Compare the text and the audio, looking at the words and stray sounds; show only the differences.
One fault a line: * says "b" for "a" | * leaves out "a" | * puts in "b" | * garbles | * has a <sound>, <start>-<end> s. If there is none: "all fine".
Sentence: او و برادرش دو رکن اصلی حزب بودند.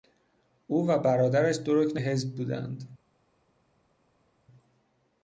* leaves out "اصلی"